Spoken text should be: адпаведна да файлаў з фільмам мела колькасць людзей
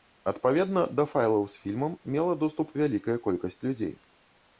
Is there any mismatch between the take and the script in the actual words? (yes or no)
yes